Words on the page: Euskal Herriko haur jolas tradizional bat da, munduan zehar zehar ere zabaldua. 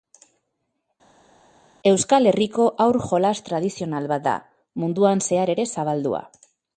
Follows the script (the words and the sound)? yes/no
no